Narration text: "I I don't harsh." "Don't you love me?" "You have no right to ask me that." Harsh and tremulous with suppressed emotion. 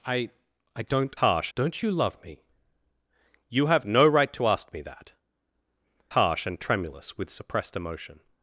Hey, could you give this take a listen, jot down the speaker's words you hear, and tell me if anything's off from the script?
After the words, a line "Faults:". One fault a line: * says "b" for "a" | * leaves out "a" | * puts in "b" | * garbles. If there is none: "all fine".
"I I don't harsh." "Don't you love me?" "You have no right to ask me that." Harsh and tremulous with suppressed emotion.
Faults:
all fine